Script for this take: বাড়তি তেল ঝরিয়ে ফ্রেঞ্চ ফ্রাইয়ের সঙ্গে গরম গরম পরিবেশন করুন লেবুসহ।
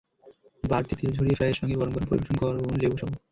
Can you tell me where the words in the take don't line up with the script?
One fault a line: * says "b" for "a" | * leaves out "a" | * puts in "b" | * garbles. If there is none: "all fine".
* leaves out "ফ্রেঞ্চ"